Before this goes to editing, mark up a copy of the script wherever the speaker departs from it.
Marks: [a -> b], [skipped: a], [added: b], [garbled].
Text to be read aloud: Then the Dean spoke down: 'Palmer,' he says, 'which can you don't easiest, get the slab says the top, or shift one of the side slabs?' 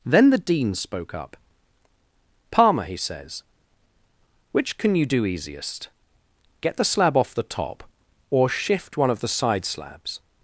Then the Dean spoke [down: -> up] 'Palmer,' he says, 'which can you [don't -> do] easiest, get the slab [says -> off] the top, or shift one of the side slabs?'